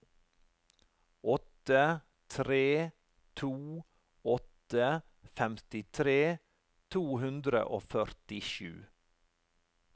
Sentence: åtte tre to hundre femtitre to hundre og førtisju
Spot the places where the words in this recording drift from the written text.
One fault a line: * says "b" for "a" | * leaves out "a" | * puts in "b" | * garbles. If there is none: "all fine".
* says "åtte" for "hundre"